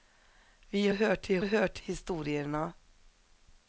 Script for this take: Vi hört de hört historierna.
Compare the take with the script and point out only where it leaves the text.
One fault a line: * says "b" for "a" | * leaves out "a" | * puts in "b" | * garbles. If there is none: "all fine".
all fine